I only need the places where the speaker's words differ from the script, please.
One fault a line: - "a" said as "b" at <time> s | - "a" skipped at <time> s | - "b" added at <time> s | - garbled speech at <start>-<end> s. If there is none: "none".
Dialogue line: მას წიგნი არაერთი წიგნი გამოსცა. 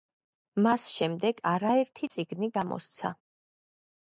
- "წიგნი" said as "შემდეგ" at 0.9 s